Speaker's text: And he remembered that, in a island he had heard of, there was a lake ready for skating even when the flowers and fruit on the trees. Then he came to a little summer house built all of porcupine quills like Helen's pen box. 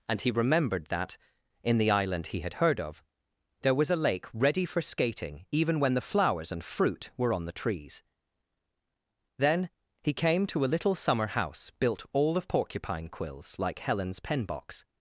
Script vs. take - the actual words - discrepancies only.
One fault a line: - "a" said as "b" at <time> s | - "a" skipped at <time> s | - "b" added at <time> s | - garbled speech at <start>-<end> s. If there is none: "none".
- "a" said as "the" at 1.8 s
- "were" added at 7.2 s